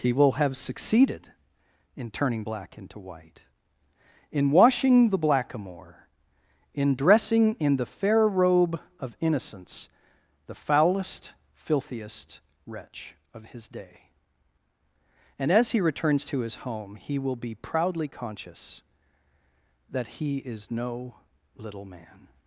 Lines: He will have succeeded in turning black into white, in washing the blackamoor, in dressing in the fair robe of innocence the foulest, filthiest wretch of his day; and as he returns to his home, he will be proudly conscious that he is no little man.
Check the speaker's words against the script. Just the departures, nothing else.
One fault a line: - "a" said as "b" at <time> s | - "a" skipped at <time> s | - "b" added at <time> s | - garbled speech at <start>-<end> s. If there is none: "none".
none